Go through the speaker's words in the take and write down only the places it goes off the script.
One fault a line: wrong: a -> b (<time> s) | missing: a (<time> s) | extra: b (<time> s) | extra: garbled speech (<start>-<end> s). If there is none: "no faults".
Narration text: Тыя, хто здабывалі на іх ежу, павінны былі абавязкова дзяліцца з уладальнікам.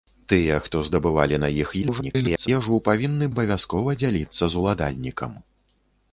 extra: garbled speech (1.8-2.5 s)
missing: былі (3.3 s)